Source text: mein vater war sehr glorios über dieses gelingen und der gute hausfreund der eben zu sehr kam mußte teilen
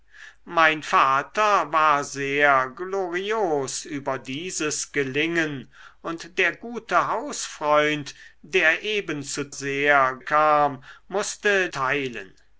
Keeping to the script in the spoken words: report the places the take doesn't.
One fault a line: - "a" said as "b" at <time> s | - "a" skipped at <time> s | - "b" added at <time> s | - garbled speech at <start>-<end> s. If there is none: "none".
none